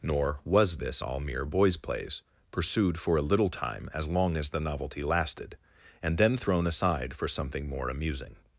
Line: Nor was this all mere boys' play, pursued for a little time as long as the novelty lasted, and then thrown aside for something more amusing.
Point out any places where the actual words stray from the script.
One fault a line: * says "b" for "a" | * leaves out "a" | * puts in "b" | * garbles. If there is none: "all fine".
* says "plays" for "play"